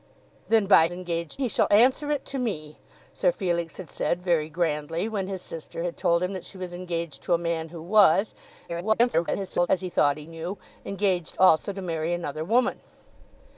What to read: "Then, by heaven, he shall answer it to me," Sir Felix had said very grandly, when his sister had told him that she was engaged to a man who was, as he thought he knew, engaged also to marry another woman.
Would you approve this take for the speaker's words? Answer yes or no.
no